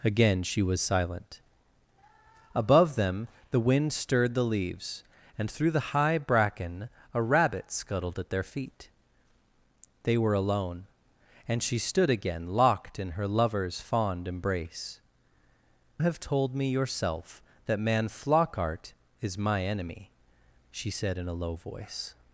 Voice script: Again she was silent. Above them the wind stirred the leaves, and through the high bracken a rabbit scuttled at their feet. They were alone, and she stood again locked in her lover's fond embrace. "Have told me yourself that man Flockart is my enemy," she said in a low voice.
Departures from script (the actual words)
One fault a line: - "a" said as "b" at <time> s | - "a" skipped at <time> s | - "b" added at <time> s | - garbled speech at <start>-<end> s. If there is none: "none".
none